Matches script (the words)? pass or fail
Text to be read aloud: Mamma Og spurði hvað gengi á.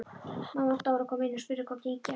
fail